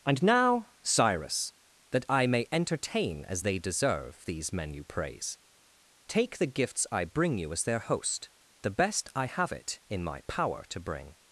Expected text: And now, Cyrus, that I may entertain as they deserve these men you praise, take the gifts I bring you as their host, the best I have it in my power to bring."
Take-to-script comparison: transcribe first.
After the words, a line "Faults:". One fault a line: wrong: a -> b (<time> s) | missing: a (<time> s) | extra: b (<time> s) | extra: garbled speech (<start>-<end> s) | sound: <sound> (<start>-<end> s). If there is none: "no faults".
And now, Cyrus, that I may entertain as they deserve these men you praise, take the gifts I bring you as their host, the best I have it in my power to bring."
Faults:
no faults